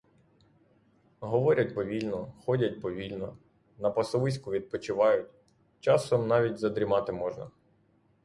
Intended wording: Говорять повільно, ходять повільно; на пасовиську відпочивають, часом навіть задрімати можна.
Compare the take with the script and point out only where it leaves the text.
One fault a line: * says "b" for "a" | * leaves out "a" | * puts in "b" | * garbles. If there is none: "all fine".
all fine